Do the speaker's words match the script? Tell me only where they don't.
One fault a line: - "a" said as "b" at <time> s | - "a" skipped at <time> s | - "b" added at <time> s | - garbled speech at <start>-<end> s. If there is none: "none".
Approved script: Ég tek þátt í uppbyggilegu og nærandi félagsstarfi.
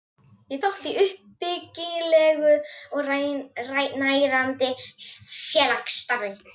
- "tek" skipped at 0.6 s